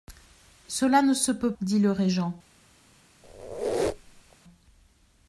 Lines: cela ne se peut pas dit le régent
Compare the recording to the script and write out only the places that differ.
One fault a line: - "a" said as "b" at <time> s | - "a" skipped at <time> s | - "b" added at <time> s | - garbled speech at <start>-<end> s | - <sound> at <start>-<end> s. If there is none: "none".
- "pas" skipped at 1.5 s
- squeak at 3.2-4.4 s